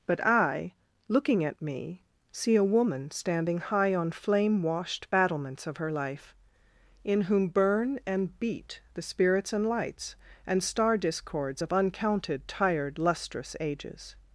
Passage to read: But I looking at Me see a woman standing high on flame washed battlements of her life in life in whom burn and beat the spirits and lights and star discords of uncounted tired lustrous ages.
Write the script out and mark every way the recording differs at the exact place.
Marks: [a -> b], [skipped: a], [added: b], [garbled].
But I looking at Me see a woman standing high on flame washed battlements of her life in [skipped: life in] whom burn and beat the spirits and lights and star discords of uncounted tired lustrous ages.